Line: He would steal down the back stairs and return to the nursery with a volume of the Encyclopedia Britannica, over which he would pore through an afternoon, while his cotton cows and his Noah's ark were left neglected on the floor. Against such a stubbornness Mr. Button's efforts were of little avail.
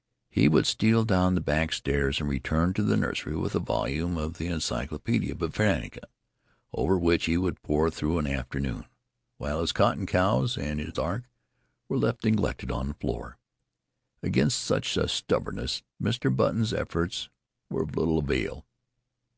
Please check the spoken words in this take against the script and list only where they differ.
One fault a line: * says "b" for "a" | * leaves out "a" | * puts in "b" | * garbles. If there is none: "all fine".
* leaves out "Noah's"